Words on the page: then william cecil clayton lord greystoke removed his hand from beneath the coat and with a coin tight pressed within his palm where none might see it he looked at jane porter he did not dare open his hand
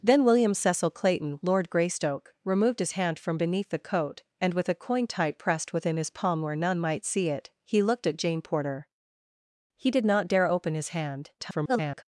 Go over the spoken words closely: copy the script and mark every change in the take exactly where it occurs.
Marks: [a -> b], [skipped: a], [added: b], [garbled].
then william cecil clayton lord greystoke removed his hand from beneath the coat and with a coin tight pressed within his palm where none might see it he looked at jane porter he did not dare open his hand [garbled]